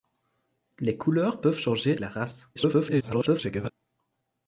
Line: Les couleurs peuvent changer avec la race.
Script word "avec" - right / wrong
wrong